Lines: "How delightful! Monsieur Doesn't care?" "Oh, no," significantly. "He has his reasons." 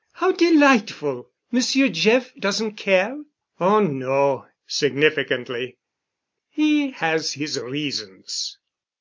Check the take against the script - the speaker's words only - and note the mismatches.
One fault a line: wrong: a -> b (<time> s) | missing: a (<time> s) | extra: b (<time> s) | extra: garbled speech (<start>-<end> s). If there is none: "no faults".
extra: Jeff (1.9 s)